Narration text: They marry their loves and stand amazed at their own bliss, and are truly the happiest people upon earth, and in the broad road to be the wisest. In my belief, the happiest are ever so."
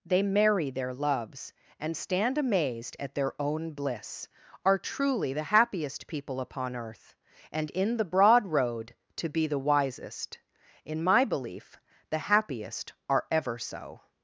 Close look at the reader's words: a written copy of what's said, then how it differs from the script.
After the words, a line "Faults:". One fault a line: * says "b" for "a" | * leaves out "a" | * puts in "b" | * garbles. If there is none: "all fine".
They marry their loves and stand amazed at their own bliss, are truly the happiest people upon earth, and in the broad road to be the wisest. In my belief, the happiest are ever so."
Faults:
* leaves out "and"